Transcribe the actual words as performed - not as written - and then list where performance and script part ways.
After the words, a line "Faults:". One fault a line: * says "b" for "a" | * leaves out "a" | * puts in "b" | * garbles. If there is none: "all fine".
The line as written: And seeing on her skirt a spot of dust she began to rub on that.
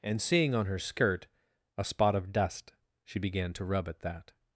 And seeing on her skirt a spot of dust she began to rub at that.
Faults:
* says "at" for "on"